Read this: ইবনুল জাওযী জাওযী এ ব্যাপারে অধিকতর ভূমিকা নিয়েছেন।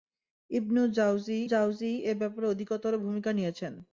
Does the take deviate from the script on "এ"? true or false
false